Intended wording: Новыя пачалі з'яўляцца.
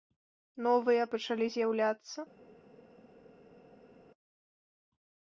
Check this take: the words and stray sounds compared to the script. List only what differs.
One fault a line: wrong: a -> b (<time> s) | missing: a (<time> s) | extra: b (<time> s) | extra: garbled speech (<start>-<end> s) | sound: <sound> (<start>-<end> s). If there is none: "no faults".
no faults